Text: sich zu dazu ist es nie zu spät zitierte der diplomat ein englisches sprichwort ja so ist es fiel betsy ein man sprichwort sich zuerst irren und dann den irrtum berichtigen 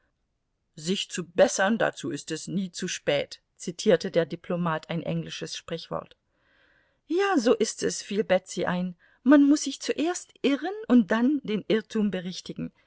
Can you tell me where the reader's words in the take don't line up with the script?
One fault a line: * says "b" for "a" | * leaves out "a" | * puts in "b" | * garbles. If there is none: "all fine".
* puts in "bessern"
* says "muß" for "sprichwort"